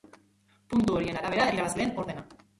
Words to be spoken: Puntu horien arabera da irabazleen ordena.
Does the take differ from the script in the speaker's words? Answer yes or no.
no